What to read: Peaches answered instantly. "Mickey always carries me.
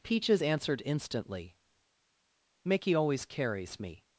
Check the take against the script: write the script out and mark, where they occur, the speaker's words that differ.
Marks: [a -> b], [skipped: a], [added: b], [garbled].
Peaches answered instantly. "Mickey always carries me.